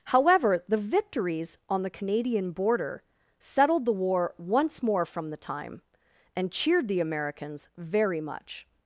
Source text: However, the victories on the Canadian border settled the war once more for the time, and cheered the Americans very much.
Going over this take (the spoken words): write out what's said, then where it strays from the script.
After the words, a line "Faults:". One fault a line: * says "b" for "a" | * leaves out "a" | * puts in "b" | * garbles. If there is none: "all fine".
However, the victories on the Canadian border settled the war once more from the time, and cheered the Americans very much.
Faults:
* says "from" for "for"